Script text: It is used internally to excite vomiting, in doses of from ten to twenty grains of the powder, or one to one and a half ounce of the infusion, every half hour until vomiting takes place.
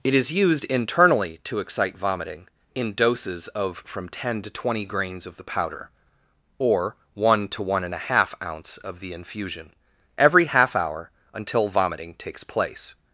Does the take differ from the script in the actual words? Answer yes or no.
no